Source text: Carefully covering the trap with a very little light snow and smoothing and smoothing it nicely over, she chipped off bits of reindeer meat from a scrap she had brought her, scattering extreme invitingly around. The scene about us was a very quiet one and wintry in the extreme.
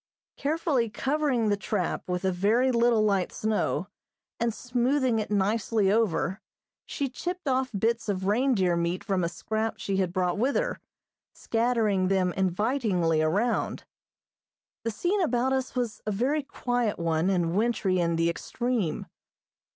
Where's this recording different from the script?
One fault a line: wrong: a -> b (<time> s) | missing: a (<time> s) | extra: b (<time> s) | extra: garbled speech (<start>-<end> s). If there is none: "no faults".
missing: and smoothing (5.2 s)
extra: with (10.4 s)
wrong: extreme -> them (12.1 s)